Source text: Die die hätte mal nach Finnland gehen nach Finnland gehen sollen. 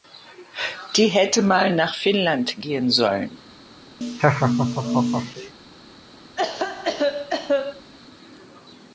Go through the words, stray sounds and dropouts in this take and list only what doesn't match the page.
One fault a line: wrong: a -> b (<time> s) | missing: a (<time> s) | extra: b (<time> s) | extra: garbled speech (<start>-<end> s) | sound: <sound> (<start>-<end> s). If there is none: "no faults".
missing: die (1.1 s)
missing: nach Finnland gehen (2.9 s)
sound: laugh (4.0-5.5 s)
sound: cough (6.4-7.9 s)